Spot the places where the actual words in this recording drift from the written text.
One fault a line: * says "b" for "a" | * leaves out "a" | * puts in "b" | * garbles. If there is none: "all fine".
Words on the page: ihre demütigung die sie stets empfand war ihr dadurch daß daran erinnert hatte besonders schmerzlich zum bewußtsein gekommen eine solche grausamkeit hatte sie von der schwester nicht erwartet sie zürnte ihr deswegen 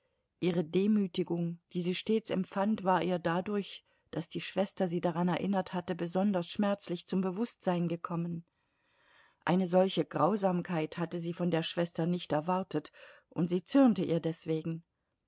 * puts in "die schwester sie"
* puts in "und"